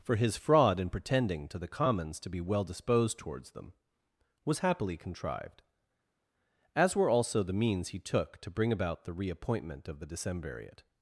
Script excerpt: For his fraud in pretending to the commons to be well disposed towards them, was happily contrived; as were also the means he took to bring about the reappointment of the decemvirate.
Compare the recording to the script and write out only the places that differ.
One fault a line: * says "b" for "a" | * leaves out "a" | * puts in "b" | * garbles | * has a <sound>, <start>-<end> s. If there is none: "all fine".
all fine